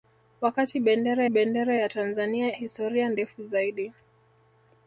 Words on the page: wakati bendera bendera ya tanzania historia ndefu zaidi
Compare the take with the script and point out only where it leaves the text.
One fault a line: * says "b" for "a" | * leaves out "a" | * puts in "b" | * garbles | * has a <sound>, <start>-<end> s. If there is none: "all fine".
all fine